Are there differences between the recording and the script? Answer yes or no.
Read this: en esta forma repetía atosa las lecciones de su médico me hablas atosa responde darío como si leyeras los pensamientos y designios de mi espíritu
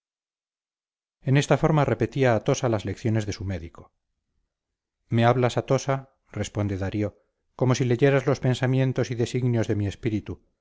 no